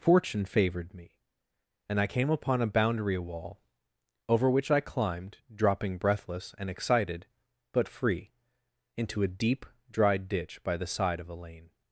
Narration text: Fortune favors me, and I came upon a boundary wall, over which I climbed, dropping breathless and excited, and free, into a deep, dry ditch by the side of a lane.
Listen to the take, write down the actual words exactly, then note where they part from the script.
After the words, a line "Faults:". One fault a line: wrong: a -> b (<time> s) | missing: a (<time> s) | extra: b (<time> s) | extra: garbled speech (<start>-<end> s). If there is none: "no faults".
Fortune favored me, and I came upon a boundary wall, over which I climbed, dropping breathless and excited, but free, into a deep, dry ditch by the side of a lane.
Faults:
wrong: favors -> favored (0.5 s)
wrong: and -> but (7.7 s)